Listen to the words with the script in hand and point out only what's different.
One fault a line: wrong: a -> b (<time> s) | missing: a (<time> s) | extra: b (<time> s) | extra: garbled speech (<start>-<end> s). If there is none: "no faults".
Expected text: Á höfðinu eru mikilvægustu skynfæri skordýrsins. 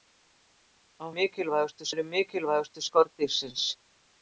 wrong: höfðinu -> mikilvægustu (1.1 s)
missing: skynfæri (2.8 s)